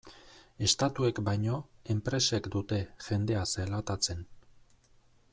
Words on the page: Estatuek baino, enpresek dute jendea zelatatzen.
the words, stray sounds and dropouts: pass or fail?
pass